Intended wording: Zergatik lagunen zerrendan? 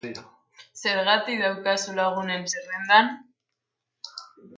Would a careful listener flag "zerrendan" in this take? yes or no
no